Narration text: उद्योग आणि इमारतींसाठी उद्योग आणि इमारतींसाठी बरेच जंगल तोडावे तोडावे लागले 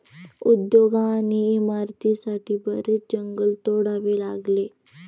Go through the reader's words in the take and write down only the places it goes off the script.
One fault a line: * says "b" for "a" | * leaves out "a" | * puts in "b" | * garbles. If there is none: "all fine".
* leaves out "उद्योग आणि इमारतींसाठी"
* leaves out "तोडावे"